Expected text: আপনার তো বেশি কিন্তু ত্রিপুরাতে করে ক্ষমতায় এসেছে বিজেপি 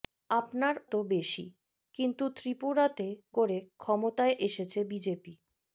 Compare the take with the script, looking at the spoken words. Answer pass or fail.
pass